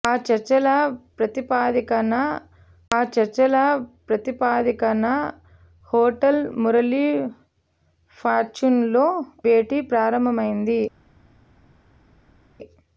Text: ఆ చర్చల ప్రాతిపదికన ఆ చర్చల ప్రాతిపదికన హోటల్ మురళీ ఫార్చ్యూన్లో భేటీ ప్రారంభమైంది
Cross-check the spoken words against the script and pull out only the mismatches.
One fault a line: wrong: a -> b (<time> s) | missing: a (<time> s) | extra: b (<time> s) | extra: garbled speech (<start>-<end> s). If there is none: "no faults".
no faults